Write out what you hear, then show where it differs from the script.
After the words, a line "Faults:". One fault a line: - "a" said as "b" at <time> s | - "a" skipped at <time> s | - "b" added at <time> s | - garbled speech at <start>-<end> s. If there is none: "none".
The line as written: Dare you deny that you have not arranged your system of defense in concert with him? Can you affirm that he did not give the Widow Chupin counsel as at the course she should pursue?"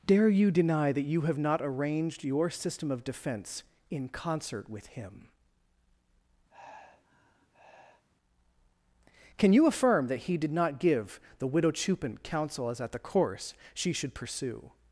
Dare you deny that you have not arranged your system of defense in concert with him? Can you affirm that he did not give the Widow Chupin counsel as at the course she should pursue?"
Faults:
none